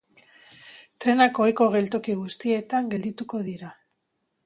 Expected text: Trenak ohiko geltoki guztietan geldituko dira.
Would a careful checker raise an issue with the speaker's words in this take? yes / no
no